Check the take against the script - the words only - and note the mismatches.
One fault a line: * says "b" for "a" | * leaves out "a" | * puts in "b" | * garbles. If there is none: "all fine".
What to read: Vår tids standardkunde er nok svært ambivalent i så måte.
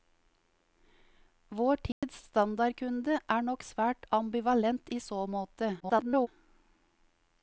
* garbles